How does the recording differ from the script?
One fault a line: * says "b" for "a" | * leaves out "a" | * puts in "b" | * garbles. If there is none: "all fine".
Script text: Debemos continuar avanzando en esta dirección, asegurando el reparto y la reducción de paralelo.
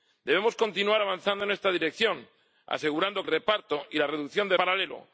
all fine